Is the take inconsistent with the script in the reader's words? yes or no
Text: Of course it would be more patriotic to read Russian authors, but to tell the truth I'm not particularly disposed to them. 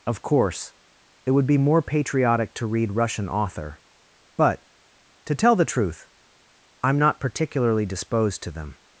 yes